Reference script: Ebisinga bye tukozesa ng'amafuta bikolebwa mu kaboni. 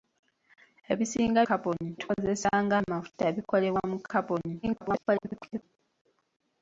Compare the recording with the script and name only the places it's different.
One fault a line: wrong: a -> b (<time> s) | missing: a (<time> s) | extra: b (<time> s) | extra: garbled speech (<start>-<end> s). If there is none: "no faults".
wrong: bye -> kaboni (1.5 s)
extra: garbled speech (4.6-5.6 s)